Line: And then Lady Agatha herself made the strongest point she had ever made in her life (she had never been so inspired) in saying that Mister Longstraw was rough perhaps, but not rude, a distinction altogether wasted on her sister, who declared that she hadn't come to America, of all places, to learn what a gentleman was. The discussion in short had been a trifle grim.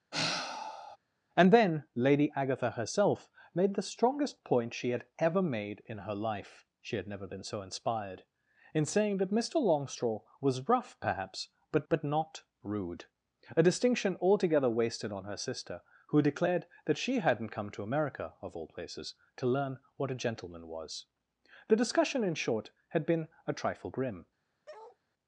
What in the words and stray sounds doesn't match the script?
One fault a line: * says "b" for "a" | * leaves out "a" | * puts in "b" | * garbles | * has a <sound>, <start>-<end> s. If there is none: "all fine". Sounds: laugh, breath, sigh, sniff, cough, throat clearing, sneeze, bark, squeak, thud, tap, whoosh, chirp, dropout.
* has a sigh, 0.1-1.0 s
* puts in "but"
* has a bark, 24.7-25.0 s